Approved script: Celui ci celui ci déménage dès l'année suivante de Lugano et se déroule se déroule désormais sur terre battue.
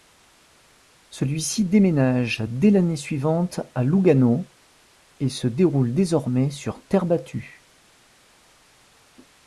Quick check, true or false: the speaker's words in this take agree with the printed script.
false